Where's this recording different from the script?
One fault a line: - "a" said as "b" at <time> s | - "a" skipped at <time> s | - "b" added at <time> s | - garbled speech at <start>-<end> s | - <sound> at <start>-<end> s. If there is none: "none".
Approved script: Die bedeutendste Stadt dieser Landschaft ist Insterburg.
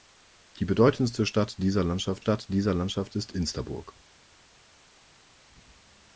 - "Stadt dieser Landschaft" added at 2.2 s